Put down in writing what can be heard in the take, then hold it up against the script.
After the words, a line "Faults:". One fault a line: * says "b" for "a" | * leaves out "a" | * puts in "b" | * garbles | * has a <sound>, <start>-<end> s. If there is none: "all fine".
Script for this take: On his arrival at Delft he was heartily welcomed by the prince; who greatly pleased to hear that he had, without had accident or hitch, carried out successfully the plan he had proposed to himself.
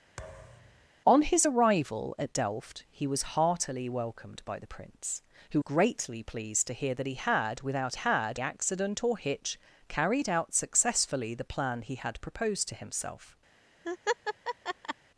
On his arrival at Delft he was heartily welcomed by the prince; who greatly pleased to hear that he had, without had accident or hitch, carried out successfully the plan he had proposed to himself.
Faults:
* has a thud, 0.2-0.9 s
* has a laugh, 13.8-14.9 s